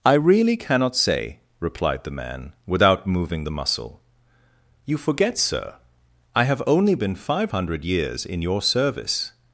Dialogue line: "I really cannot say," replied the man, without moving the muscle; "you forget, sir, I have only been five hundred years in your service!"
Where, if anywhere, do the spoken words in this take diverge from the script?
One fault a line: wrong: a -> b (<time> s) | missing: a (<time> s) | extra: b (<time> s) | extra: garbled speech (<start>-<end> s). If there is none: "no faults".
no faults